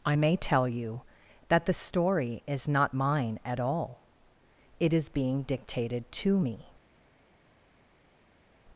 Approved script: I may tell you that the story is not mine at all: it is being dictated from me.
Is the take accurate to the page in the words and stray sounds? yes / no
no